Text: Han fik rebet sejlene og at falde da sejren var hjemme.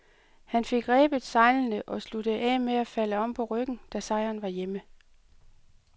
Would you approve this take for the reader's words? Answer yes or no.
no